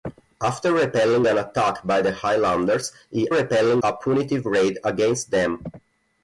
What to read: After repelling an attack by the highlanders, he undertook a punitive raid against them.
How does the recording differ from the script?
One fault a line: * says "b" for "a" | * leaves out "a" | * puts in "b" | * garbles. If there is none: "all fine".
* says "repelling" for "undertook"